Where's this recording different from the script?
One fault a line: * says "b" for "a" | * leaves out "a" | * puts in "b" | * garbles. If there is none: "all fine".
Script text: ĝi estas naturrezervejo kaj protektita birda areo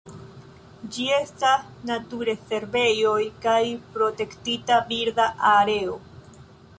all fine